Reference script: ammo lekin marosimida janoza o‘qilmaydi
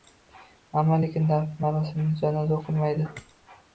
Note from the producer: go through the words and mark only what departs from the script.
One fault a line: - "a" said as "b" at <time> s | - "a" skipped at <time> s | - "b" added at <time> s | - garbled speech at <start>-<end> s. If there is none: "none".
- "dafn" added at 1.3 s